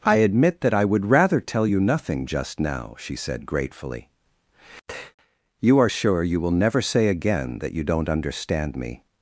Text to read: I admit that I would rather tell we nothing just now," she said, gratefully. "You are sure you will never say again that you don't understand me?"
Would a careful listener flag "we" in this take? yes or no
yes